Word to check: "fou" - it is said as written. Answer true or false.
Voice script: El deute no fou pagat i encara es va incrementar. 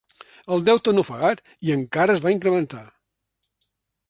false